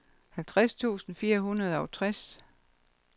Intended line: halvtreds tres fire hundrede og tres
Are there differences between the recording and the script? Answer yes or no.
yes